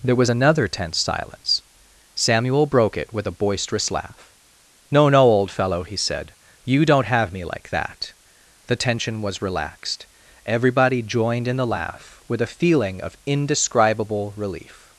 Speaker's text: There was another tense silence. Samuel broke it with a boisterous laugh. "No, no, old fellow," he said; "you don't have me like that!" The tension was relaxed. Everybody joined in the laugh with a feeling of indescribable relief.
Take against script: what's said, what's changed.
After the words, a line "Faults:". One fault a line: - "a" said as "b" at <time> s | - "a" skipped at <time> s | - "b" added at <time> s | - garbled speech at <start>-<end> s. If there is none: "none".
There was another tense silence. Samuel broke it with a boisterous laugh. "No, no, old fellow," he said; "you don't have me like that!" The tension was relaxed. Everybody joined in the laugh with a feeling of indescribable relief.
Faults:
none